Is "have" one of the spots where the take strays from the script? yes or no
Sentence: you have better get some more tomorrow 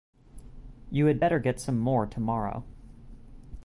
yes